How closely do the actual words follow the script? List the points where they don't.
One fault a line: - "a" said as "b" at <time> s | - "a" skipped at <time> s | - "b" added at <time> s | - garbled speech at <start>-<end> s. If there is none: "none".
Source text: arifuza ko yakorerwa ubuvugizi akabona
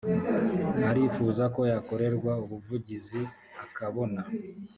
none